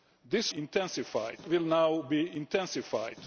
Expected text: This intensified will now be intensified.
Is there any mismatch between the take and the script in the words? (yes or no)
no